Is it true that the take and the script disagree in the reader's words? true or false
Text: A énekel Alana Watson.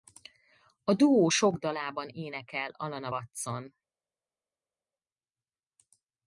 true